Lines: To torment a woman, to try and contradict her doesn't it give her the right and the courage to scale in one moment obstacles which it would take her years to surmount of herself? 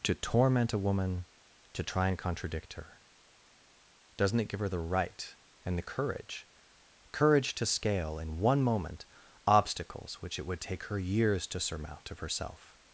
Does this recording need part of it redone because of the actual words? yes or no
yes